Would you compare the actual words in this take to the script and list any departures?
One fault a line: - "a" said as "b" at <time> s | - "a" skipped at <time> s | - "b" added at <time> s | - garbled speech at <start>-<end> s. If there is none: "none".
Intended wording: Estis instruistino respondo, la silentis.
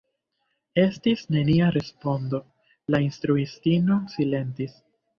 - "instruistino" said as "nenia" at 1.4 s
- "instruistino" added at 3.1 s